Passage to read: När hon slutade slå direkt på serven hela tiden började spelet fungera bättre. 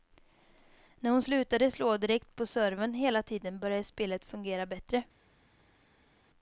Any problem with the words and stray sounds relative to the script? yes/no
no